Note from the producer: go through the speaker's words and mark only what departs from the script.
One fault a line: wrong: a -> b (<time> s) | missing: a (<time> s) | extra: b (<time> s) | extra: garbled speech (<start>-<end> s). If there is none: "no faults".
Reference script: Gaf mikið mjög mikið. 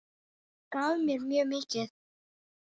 wrong: mikið -> mér (1.1 s)